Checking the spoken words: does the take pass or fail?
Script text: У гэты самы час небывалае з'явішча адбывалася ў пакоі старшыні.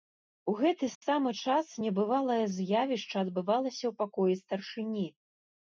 pass